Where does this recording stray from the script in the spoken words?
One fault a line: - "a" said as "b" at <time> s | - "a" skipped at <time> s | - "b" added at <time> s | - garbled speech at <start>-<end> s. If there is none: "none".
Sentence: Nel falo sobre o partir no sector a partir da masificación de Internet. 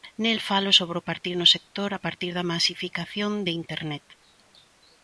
none